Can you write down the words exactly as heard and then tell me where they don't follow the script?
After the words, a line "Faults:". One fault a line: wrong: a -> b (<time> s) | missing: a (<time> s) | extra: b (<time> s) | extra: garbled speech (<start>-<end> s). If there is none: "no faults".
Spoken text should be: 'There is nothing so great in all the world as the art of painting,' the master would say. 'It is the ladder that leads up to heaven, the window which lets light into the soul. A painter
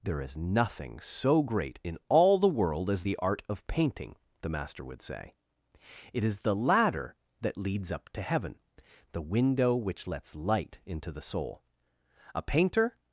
'There is nothing so great in all the world as the art of painting,' the master would say. 'It is the ladder that leads up to heaven, the window which lets light into the soul. A painter
Faults:
no faults